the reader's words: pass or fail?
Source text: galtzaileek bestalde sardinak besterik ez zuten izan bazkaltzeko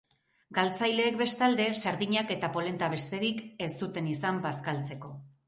fail